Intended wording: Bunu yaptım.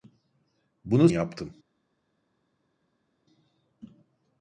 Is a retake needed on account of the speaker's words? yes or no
no